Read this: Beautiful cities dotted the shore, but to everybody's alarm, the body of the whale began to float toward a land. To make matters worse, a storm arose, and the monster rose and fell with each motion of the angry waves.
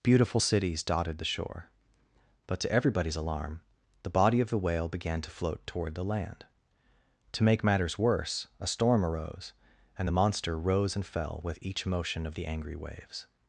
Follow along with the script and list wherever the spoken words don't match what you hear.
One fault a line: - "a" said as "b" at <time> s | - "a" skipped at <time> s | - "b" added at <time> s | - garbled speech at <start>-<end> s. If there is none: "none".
- "a" said as "the" at 5.9 s